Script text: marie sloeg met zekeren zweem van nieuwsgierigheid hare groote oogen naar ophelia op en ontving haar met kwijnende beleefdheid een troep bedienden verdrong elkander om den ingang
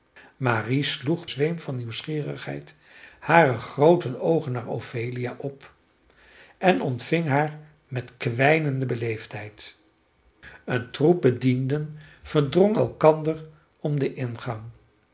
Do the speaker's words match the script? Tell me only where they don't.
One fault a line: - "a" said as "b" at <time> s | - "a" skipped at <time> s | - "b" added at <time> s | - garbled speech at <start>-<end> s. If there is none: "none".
- "met zekeren" skipped at 1.3 s